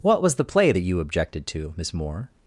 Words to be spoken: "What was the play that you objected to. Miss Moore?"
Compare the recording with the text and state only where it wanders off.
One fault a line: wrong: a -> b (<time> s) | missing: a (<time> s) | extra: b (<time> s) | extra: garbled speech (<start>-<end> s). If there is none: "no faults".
no faults